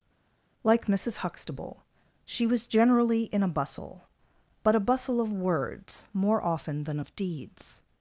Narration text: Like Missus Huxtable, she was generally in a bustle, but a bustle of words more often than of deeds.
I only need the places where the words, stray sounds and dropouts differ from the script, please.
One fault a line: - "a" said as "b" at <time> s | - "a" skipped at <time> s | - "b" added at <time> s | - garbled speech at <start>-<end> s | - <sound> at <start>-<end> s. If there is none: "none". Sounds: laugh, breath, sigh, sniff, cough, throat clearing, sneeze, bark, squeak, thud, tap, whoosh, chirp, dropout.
none